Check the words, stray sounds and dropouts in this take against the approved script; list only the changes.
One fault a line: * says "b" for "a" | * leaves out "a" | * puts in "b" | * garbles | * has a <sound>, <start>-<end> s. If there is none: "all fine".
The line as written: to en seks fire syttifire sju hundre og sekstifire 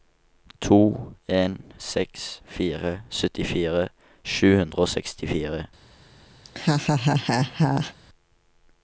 * has a laugh, 6.4-7.9 s